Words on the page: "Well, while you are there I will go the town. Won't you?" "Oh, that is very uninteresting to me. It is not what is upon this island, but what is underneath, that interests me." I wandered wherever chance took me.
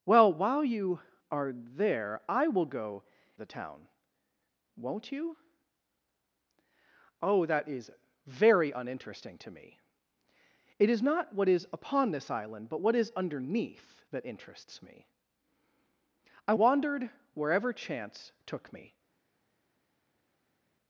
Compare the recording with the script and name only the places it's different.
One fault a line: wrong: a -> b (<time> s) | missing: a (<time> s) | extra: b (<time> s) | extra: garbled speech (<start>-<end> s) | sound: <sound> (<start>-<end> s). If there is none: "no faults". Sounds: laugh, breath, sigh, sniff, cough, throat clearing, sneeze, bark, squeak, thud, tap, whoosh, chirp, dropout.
no faults